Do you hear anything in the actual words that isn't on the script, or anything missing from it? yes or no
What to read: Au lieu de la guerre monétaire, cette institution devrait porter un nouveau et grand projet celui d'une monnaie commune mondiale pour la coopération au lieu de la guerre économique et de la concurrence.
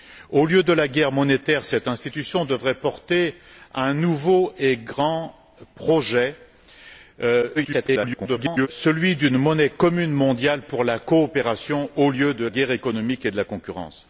yes